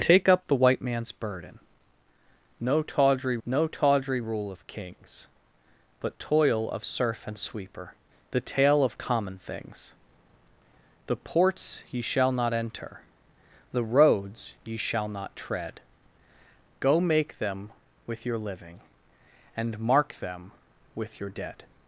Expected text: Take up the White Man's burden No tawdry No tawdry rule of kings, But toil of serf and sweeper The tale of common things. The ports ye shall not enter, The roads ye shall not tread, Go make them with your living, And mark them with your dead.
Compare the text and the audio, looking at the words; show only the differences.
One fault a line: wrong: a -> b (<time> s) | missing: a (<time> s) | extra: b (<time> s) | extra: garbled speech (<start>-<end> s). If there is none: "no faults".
no faults